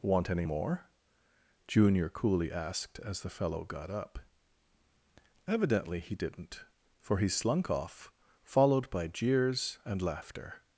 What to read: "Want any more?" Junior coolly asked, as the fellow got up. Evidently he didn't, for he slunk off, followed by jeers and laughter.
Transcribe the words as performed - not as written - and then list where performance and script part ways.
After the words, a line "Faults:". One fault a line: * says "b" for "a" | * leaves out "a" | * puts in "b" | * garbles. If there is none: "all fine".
"Want any more?" Junior coolly asked, as the fellow got up. Evidently he didn't, for he slunk off, followed by jeers and laughter.
Faults:
all fine